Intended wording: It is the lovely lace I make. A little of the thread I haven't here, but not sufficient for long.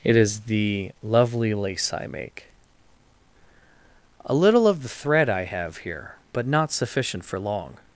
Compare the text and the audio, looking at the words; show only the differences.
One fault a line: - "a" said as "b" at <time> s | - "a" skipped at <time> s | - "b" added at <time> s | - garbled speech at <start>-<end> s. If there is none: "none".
- "haven't" said as "have" at 5.5 s